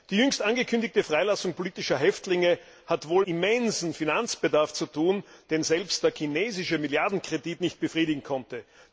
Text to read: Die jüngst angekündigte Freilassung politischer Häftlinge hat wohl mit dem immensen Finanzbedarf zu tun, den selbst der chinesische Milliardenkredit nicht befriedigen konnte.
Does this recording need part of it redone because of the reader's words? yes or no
yes